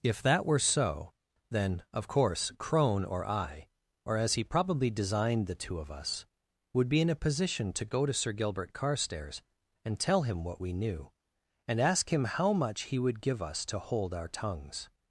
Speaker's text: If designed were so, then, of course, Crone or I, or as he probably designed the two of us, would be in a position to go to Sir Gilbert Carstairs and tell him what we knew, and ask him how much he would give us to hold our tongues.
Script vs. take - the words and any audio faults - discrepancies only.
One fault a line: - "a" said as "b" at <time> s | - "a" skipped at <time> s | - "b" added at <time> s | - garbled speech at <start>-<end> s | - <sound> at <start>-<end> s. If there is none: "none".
- "designed" said as "that" at 0.2 s